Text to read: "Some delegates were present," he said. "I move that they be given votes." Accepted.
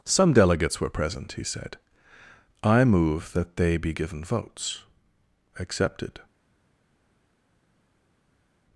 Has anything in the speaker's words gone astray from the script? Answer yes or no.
no